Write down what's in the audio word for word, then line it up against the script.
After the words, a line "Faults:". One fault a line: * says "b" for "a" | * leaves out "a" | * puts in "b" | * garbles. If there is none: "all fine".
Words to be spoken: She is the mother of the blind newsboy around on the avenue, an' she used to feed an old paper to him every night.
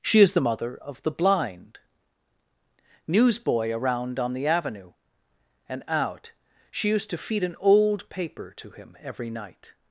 She is the mother of the blind newsboy around on the avenue, and out' she used to feed an old paper to him every night.
Faults:
* says "and out" for "an"